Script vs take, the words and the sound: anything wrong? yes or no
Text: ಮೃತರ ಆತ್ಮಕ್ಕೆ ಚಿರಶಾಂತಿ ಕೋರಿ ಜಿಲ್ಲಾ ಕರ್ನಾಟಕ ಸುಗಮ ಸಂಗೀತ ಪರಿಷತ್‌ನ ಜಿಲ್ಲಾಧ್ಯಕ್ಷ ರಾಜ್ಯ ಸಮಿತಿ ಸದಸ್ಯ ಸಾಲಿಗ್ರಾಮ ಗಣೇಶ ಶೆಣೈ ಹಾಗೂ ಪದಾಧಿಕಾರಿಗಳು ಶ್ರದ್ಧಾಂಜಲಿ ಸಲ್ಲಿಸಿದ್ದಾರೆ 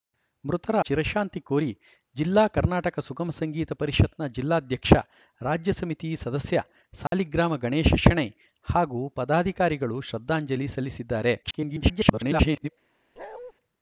yes